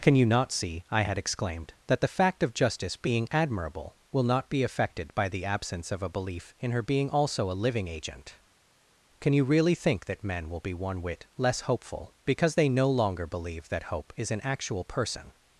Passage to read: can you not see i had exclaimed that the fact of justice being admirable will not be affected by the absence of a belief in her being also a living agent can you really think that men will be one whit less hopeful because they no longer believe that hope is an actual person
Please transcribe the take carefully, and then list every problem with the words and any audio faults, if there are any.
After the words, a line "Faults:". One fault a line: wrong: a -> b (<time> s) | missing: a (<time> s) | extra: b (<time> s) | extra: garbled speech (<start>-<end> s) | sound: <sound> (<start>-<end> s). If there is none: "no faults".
can you not see i had exclaimed that the fact of justice being admirable will not be affected by the absence of a belief in her being also a living agent can you really think that men will be one whit less hopeful because they no longer believe that hope is an actual person
Faults:
no faults